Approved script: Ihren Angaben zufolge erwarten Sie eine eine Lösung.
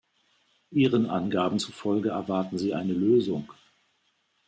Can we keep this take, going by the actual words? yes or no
no